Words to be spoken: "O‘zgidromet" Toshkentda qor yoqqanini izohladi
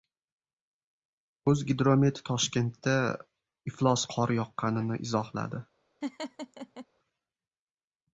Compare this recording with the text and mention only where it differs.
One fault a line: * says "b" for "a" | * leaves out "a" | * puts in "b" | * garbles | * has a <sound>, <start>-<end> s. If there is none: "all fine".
* puts in "iflos"
* has a laugh, 6.0-6.9 s